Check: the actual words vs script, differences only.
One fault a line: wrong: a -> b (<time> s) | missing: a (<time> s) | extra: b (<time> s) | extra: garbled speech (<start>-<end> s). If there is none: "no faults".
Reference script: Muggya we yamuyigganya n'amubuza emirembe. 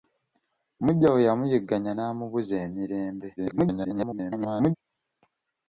extra: garbled speech (3.4-4.8 s)